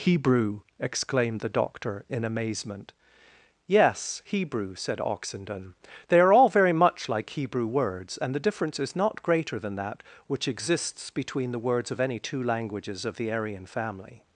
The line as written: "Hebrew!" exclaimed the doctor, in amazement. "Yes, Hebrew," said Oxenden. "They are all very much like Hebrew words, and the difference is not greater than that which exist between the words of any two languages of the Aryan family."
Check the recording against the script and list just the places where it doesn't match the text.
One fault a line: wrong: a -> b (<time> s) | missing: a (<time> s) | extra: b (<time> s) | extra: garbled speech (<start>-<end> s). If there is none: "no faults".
wrong: exist -> exists (10.5 s)